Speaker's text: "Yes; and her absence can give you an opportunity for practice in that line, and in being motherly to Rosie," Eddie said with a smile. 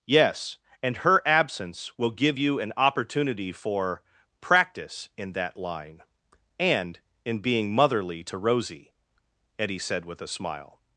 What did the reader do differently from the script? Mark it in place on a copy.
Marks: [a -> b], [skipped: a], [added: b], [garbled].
"Yes; and her absence [can -> will] give you an opportunity for practice in that line, and in being motherly to Rosie," Eddie said with a smile.